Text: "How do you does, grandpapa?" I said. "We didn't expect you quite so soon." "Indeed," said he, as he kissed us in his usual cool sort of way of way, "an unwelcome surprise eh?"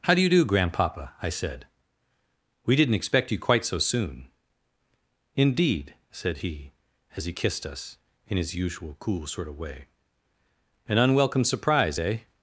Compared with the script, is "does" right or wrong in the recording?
wrong